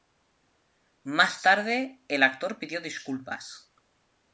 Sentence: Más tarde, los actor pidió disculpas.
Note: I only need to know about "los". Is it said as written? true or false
false